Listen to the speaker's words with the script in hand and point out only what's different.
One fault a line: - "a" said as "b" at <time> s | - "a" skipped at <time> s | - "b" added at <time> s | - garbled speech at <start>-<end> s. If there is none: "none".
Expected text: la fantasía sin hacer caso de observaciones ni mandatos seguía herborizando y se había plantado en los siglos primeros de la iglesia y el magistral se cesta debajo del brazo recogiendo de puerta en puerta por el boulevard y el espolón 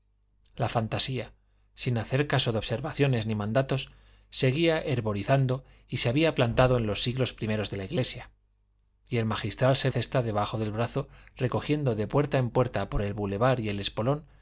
none